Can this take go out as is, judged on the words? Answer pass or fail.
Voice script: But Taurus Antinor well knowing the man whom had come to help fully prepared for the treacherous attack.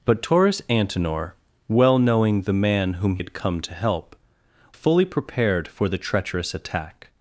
pass